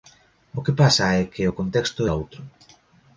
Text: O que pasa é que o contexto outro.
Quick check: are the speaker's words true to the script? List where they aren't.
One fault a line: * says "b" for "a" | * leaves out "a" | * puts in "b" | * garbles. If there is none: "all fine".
all fine